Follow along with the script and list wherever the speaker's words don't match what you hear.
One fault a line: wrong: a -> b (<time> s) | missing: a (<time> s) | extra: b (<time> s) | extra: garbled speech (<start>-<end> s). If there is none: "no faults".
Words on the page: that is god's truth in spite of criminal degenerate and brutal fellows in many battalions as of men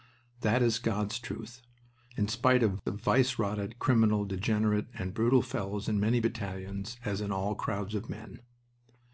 extra: vice rotted (2.9 s)
extra: in all crowds (7.2 s)